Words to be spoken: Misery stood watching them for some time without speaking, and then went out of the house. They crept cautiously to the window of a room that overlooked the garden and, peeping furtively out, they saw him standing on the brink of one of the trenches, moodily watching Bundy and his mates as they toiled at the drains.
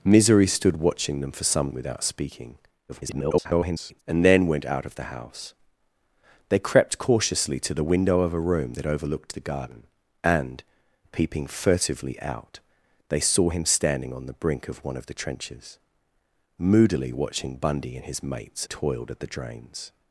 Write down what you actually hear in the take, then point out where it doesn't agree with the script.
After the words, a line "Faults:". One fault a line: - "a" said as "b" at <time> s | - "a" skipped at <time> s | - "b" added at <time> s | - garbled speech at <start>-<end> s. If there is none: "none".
Misery stood watching them for some without speaking, [garbled] and then went out of the house. They crept cautiously to the window of a room that overlooked the garden and, peeping furtively out, they saw him standing on the brink of one of the trenches, moodily watching Bundy and his mates toiled at the drains.
Faults:
- "time" skipped at 1.7 s
- garbled speech at 2.9-4.0 s
- "as they" skipped at 18.7 s